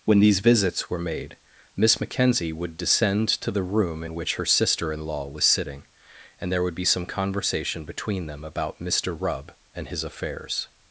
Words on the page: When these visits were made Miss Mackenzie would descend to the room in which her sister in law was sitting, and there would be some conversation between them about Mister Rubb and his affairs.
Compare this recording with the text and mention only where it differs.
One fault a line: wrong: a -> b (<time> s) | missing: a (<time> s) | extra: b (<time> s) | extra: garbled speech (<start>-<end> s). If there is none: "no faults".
no faults